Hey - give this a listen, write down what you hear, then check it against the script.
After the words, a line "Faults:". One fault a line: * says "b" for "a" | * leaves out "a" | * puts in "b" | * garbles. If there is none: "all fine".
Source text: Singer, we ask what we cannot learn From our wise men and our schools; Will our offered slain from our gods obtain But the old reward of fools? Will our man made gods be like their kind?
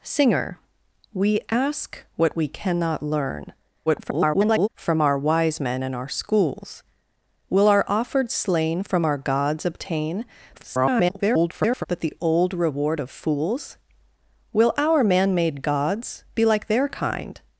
Singer, we ask what we cannot learn [garbled] From our wise men and our schools; Will our offered slain from our gods obtain [garbled] But the old reward of fools? Will our man made gods be like their kind?
Faults:
* garbles
* garbles